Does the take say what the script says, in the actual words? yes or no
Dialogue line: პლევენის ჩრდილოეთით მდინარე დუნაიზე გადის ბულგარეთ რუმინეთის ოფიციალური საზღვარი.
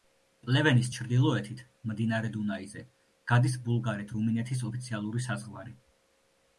yes